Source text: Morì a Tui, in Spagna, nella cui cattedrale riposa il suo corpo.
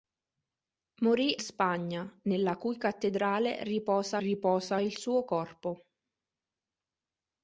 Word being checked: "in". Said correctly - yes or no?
no